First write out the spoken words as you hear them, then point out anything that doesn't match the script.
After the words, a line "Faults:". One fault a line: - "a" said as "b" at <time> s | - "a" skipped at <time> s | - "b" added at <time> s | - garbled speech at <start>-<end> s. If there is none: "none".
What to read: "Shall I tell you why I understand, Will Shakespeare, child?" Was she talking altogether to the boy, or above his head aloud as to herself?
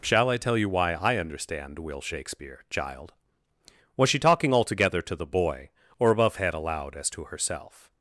"Shall I tell you why I understand, Will Shakespeare, child?" Was she talking altogether to the boy, or above head aloud as to herself?
Faults:
- "his" skipped at 6.4 s